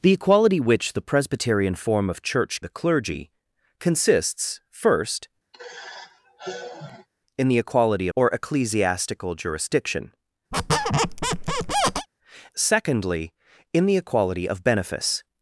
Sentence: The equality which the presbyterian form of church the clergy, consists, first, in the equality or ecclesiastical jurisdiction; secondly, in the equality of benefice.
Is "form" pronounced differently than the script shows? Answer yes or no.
no